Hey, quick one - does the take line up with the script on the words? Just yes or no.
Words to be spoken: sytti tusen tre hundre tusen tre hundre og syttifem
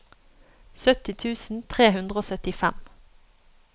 no